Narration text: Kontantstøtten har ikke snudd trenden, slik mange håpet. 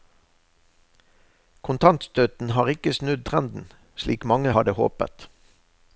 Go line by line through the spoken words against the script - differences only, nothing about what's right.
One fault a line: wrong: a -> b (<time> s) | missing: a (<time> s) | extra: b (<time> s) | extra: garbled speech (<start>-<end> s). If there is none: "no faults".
extra: hadde (4.5 s)